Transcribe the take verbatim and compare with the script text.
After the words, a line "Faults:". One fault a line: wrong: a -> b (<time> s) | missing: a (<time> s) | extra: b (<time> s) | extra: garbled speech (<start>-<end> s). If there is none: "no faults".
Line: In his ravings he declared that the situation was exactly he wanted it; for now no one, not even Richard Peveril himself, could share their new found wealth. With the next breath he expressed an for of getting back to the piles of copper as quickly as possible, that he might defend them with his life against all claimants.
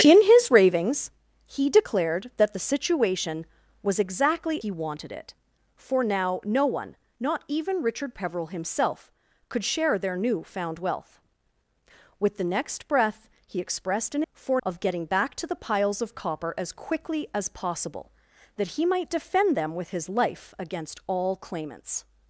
In his ravings he declared that the situation was exactly he wanted it; for now no one, not even Richard Peveril himself, could share their new found wealth. With the next breath he expressed an for of getting back to the piles of copper as quickly as possible, that he might defend them with his life against all claimants.
Faults:
no faults